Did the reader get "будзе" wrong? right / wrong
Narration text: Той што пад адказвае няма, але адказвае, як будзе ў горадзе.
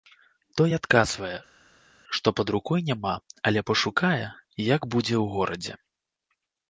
right